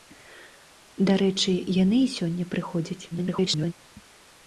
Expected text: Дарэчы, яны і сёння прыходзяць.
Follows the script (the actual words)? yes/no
no